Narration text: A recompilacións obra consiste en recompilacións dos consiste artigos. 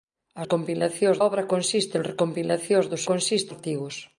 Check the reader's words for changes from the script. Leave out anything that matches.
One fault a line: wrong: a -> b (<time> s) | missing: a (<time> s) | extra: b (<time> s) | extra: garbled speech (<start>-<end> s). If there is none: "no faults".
no faults